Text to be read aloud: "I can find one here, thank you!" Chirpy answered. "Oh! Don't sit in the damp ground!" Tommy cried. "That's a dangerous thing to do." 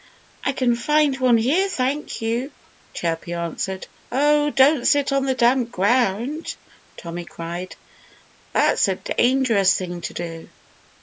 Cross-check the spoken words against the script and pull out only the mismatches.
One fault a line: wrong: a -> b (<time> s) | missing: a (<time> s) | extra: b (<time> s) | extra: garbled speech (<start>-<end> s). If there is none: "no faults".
wrong: in -> on (5.1 s)